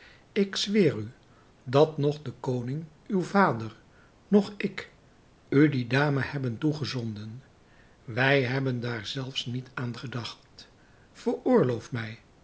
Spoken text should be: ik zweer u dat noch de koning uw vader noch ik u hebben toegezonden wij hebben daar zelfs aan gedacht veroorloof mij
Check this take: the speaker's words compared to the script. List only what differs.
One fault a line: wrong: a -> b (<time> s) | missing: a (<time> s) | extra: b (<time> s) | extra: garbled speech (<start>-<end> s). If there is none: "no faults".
extra: die dame (5.7 s)
extra: niet (9.4 s)